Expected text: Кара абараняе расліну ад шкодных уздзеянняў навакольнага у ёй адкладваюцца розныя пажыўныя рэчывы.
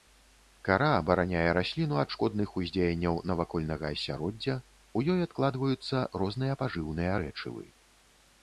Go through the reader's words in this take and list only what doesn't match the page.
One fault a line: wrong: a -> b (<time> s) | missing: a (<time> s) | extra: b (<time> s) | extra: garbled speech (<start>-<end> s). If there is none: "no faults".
extra: асяроддзя (3.9 s)